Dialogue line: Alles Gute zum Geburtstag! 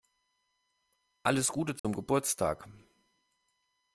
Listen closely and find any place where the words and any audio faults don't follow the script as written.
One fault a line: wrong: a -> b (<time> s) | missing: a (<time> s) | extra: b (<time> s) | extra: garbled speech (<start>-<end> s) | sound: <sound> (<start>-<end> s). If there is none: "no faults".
sound: dropout (1.8-1.8 s)